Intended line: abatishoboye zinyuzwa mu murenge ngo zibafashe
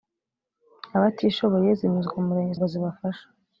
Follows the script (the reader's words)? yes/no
yes